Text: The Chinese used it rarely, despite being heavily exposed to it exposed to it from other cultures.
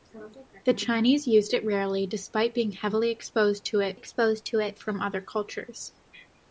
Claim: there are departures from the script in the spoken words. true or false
false